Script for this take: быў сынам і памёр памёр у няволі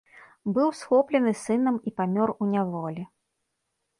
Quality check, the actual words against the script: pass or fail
fail